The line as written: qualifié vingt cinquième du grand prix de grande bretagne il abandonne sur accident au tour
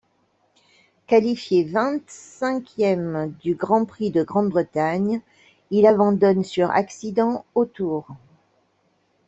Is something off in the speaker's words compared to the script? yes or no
no